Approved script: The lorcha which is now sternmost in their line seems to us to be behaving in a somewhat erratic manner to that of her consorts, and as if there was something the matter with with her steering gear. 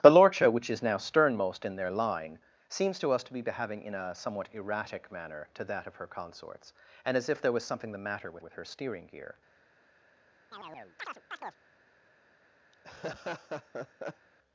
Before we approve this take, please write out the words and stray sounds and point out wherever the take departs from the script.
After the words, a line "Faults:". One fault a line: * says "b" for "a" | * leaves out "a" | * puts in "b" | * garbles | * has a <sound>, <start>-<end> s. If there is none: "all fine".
The lorcha which is now sternmost in their line seems to us to be behaving in a somewhat erratic manner to that of her consorts, and as if there was something the matter with with her steering gear.
Faults:
* has a chirp, 10.5-11.6 s
* has a laugh, 12.7-14.3 s